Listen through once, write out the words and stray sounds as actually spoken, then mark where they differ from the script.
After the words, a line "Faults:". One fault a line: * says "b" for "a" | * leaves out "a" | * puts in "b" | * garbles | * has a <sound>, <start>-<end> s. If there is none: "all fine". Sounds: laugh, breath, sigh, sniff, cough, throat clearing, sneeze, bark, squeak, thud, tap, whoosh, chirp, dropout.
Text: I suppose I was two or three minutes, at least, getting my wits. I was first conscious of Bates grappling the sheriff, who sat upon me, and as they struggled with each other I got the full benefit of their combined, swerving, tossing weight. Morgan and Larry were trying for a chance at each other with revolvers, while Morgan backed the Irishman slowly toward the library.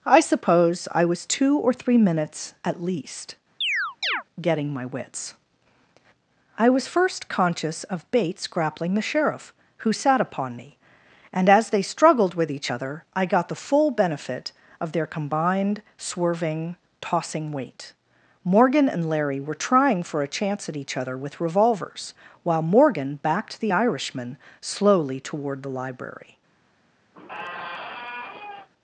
I suppose I was two or three minutes, at least, getting my wits. I was first conscious of Bates grappling the sheriff, who sat upon me, and as they struggled with each other I got the full benefit of their combined, swerving, tossing weight. Morgan and Larry were trying for a chance at each other with revolvers, while Morgan backed the Irishman slowly toward the library.
Faults:
* has a chirp, 3.6-4.2 s
* has a squeak, 27.1-28.7 s